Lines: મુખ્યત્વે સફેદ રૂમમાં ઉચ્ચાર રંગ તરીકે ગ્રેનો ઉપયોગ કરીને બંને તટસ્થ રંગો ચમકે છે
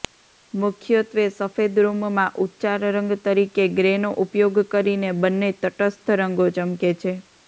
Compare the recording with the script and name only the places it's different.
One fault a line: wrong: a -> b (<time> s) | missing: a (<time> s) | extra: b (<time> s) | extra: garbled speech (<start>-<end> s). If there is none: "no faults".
no faults